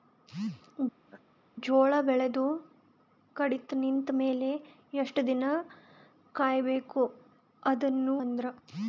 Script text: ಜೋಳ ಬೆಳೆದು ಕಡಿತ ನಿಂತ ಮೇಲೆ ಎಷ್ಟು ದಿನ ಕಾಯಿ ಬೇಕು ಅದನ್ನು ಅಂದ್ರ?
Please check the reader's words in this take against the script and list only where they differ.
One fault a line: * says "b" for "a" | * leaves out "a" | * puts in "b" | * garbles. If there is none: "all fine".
all fine